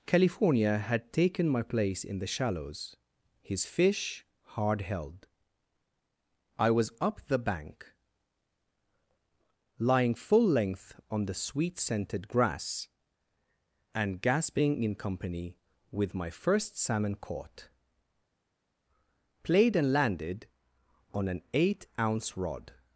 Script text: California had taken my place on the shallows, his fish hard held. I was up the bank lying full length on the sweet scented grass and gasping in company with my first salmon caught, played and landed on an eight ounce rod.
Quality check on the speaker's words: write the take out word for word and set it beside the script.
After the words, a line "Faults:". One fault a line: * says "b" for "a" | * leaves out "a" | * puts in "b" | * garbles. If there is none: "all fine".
California had taken my place in the shallows, his fish hard held. I was up the bank lying full length on the sweet scented grass and gasping in company with my first salmon caught, played and landed on an eight ounce rod.
Faults:
* says "in" for "on"